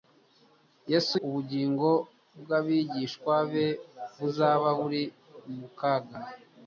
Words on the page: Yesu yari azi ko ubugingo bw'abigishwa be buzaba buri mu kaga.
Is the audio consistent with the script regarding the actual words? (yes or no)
no